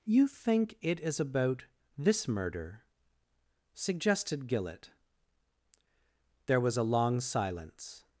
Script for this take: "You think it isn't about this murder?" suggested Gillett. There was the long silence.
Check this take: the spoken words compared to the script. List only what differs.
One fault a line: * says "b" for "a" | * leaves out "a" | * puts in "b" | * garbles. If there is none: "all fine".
* says "is" for "isn't"
* says "a" for "the"